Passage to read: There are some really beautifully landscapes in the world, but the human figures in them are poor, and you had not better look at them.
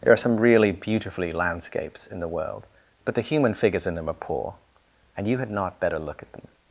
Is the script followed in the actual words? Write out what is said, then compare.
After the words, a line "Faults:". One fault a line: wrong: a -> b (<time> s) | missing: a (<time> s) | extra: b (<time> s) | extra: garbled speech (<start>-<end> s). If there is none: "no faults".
There are some really beautifully landscapes in the world, but the human figures in them are poor, and you had not better look at them.
Faults:
no faults